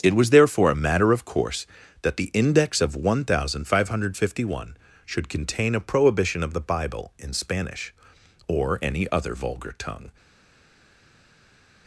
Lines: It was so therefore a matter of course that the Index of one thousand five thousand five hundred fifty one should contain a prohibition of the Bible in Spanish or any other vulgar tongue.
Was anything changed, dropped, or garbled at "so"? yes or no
yes